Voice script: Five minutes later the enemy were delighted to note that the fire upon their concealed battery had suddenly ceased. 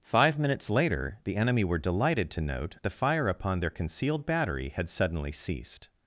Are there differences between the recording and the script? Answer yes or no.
yes